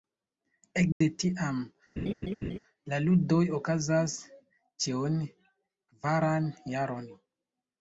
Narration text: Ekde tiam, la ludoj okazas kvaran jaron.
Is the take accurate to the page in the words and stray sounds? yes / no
no